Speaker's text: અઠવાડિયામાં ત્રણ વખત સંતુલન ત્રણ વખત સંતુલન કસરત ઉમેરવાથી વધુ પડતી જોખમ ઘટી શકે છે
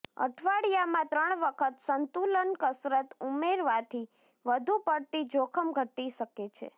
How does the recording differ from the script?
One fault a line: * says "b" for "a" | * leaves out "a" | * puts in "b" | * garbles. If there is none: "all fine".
* leaves out "ત્રણ વખત સંતુલન"